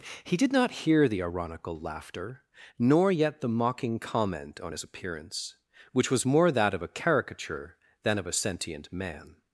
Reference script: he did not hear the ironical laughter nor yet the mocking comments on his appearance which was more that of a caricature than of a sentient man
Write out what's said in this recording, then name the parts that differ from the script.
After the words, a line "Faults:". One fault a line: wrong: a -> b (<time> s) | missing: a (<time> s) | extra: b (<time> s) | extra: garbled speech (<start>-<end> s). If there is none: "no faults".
he did not hear the ironical laughter nor yet the mocking comment on his appearance which was more that of a caricature than of a sentient man
Faults:
wrong: comments -> comment (4.0 s)